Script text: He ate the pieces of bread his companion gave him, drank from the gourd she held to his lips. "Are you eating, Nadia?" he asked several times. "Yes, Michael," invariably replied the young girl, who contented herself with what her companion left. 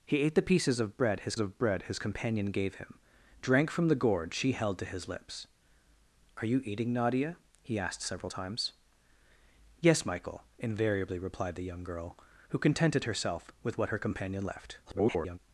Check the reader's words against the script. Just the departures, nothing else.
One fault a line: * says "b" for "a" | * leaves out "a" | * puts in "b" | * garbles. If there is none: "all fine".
* puts in "of bread his"
* garbles